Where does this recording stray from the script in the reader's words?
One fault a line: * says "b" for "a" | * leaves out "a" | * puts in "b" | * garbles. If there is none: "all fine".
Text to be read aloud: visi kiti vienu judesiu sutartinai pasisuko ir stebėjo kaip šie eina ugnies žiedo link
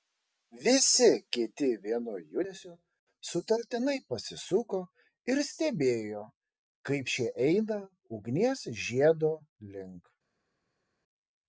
all fine